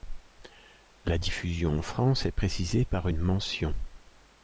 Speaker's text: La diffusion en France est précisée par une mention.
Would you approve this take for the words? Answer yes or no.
yes